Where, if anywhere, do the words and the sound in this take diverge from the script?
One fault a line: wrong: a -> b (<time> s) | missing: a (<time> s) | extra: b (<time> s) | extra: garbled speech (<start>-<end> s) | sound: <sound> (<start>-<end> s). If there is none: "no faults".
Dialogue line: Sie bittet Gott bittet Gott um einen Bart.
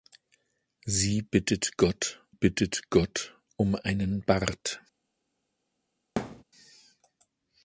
sound: thud (6.2-6.4 s)